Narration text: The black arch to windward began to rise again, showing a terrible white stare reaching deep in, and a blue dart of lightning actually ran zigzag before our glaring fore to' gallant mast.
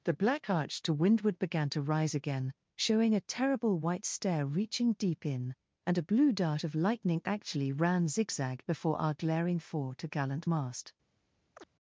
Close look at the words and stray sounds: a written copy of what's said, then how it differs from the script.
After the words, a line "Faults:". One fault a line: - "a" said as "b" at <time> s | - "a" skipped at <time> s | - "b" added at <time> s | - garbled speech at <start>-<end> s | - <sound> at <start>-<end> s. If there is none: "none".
The black arch to windward began to rise again, showing a terrible white stare reaching deep in, and a blue dart of lightning actually ran zigzag before our glaring fore to' gallant mast.
Faults:
- chirp at 11.5-11.7 s